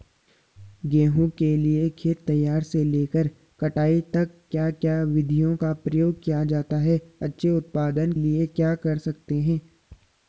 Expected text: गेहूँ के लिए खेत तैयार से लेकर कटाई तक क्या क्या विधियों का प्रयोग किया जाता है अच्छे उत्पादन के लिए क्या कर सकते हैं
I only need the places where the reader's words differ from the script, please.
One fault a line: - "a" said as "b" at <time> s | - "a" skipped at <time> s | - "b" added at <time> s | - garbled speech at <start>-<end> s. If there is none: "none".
- "के" skipped at 8.1 s